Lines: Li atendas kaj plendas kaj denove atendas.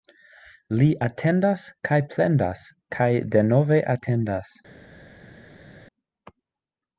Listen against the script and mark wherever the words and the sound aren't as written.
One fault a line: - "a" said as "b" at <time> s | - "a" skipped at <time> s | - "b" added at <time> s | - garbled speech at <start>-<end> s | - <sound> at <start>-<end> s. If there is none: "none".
none